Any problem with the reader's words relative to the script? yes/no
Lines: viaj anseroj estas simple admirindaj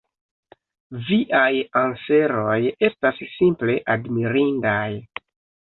no